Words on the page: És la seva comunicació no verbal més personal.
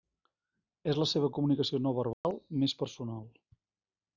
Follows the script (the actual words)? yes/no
yes